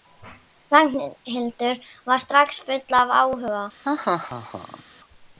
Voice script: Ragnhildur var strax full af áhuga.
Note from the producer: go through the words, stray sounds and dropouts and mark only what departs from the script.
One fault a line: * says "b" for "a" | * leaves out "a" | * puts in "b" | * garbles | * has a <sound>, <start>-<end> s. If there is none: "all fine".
* has a laugh, 3.8-4.8 s